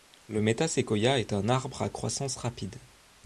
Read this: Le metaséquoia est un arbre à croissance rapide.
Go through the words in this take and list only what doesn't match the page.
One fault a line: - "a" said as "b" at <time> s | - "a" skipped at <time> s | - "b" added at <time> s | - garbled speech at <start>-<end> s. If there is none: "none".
none